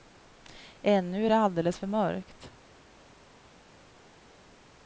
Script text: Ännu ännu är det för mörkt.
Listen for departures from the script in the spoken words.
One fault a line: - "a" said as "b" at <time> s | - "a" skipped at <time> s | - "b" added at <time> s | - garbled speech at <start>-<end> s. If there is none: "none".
- "ännu" skipped at 1.2 s
- "alldeles" added at 1.4 s